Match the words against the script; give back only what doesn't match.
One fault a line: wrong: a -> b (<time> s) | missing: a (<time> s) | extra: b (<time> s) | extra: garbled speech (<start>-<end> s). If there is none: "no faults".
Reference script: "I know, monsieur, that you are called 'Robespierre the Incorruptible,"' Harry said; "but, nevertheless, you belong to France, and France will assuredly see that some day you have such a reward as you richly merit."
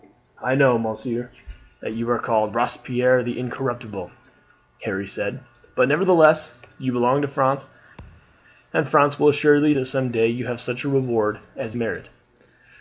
missing: see (9.7 s)
missing: you richly (11.8 s)